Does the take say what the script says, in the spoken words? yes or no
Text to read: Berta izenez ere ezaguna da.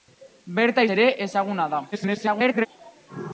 no